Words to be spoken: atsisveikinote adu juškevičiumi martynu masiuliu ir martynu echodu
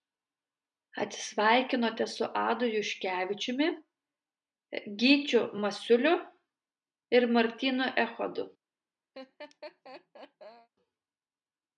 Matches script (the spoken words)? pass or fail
fail